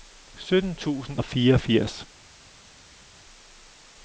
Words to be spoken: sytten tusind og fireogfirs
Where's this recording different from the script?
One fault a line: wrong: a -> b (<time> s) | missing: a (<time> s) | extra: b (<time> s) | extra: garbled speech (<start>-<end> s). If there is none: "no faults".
no faults